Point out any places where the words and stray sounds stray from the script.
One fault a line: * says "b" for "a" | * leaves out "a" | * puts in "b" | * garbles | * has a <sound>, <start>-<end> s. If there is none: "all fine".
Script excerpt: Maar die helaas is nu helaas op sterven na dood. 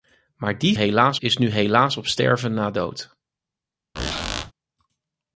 * has a squeak, 3.9-4.5 s